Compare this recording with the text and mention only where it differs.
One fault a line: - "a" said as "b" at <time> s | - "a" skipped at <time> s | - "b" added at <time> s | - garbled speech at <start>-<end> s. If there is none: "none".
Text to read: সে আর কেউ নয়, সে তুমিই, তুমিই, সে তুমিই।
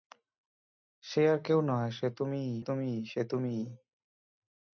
none